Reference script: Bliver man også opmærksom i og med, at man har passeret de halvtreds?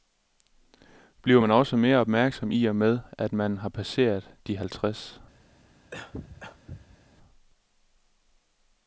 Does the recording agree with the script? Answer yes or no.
no